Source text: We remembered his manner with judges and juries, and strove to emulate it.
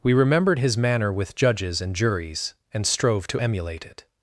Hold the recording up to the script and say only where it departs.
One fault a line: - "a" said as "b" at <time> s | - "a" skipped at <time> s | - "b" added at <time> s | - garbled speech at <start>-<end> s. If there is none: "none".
none